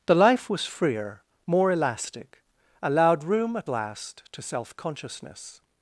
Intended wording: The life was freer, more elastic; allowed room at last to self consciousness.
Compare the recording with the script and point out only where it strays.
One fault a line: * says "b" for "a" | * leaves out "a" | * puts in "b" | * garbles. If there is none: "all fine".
all fine